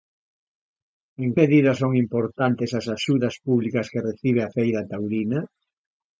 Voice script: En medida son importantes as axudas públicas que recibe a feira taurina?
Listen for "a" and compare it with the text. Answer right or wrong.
right